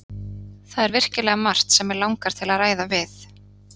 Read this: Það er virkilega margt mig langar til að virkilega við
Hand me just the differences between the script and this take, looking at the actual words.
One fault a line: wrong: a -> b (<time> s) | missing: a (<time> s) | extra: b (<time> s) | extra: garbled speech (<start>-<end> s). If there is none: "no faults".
extra: sem (1.8 s)
wrong: virkilega -> ræða (2.6 s)